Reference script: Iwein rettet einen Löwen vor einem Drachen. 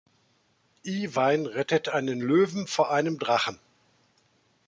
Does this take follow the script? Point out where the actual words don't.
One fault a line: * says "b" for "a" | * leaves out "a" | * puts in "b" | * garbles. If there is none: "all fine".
all fine